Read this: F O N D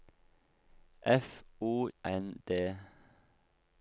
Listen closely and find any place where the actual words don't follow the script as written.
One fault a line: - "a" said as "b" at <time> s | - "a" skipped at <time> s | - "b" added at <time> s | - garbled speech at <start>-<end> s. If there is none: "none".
none